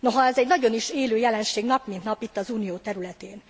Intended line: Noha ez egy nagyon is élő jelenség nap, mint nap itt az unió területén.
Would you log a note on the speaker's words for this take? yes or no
no